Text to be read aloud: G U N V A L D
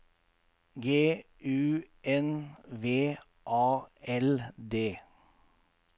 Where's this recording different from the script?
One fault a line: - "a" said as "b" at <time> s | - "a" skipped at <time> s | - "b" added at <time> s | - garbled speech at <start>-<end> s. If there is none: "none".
none